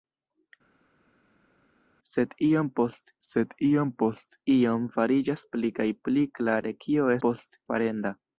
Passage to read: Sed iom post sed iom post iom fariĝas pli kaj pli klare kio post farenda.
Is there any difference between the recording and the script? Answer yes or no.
no